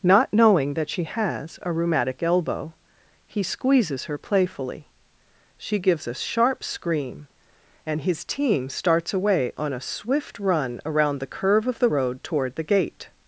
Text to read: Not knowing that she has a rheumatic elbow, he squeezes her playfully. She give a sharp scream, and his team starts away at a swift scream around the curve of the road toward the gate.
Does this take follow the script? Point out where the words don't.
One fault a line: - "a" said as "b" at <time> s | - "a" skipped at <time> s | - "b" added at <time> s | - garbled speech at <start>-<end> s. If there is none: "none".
- "give" said as "gives" at 5.8 s
- "at" said as "on" at 9.6 s
- "scream" said as "run" at 10.4 s